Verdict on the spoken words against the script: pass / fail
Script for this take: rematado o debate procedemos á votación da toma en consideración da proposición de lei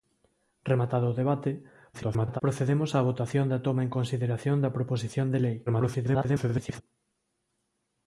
fail